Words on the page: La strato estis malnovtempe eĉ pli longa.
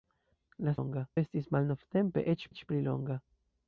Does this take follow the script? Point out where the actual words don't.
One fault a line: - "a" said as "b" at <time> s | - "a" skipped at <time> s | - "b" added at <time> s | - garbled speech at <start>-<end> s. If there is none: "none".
- "strato" said as "longa" at 0.8 s
- "eĉ" added at 2.5 s